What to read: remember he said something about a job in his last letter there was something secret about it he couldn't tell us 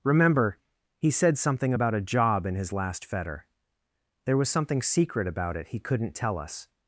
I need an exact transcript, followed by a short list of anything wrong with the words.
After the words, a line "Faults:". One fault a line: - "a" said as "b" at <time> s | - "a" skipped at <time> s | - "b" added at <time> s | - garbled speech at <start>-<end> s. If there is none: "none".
remember he said something about a job in his last fetter there was something secret about it he couldn't tell us
Faults:
- "letter" said as "fetter" at 3.0 s